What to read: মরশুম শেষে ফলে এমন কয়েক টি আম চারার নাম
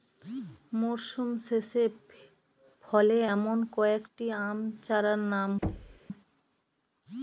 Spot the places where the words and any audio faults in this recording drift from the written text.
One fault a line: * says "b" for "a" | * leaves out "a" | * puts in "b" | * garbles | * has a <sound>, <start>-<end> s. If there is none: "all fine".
* has a thud, 5.6-6.0 s